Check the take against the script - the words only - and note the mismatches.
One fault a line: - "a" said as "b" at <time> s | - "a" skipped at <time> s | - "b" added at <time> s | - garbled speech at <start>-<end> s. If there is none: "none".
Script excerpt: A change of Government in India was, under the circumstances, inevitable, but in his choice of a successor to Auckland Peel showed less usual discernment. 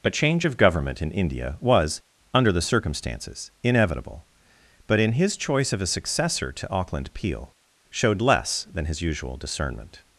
- "than his" added at 8.7 s